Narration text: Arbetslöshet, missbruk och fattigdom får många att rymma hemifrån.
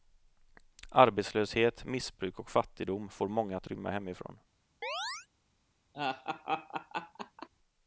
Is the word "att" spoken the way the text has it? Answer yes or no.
yes